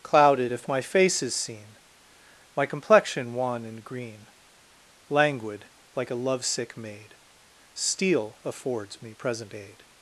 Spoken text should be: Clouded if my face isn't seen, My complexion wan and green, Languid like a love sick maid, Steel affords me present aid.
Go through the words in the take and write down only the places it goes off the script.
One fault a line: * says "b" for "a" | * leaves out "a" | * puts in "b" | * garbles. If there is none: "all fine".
* says "is" for "isn't"